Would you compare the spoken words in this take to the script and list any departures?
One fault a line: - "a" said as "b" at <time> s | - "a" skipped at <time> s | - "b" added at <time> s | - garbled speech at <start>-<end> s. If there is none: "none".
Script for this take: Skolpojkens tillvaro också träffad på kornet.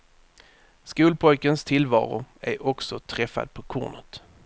- "är" added at 2.4 s